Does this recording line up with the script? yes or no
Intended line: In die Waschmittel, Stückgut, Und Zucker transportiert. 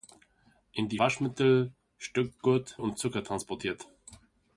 yes